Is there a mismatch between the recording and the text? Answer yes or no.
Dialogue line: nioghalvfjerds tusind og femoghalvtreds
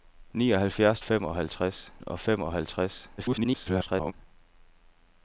yes